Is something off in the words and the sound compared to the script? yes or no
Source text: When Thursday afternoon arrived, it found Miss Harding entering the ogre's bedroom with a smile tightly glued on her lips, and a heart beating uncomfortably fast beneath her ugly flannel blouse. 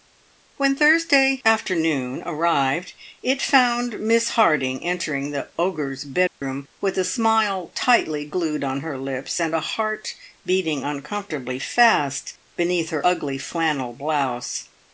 yes